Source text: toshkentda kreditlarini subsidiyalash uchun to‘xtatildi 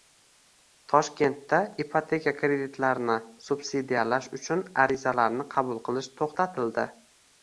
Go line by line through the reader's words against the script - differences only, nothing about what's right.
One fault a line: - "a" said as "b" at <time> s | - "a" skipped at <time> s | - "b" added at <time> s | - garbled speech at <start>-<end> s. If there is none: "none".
- "ipoteka" added at 1.8 s
- "arizalarni qabul qilish" added at 4.8 s